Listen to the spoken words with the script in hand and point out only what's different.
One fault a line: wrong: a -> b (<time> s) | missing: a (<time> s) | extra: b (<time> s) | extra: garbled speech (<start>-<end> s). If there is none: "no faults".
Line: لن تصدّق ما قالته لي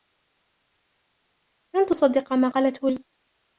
no faults